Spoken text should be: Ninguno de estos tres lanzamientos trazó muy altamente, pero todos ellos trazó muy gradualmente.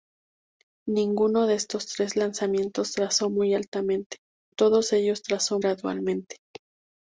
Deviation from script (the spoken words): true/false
true